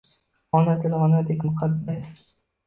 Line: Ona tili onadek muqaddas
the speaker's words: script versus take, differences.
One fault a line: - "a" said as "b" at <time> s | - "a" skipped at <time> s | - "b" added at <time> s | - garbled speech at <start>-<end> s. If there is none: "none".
none